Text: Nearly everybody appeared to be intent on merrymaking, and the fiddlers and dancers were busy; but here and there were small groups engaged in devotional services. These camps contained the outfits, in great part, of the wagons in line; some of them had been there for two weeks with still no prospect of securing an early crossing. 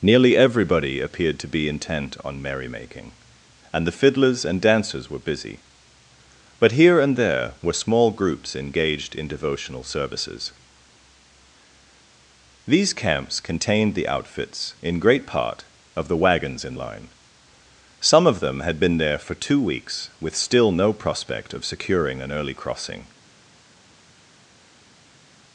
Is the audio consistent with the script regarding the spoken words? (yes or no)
yes